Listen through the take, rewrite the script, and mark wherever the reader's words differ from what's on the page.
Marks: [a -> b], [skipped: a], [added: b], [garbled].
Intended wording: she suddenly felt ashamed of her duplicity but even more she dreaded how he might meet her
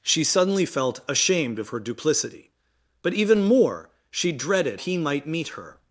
she suddenly felt ashamed of her duplicity but even more she dreaded [skipped: how] he might meet her